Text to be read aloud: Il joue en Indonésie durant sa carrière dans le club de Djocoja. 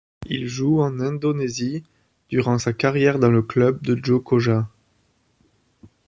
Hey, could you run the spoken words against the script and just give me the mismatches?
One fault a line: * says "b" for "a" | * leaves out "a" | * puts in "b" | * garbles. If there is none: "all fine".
all fine